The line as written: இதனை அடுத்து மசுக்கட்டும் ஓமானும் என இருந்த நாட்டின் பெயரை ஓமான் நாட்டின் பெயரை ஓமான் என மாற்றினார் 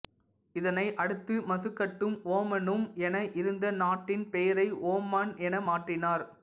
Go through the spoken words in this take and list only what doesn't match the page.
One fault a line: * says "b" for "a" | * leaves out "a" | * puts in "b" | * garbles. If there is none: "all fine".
* leaves out "நாட்டின் பெயரை ஓமான்"